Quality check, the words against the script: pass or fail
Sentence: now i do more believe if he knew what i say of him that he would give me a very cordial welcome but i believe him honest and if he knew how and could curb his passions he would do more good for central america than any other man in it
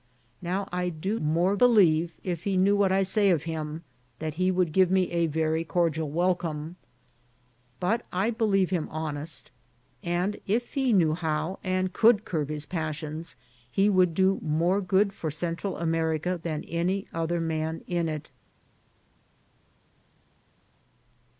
pass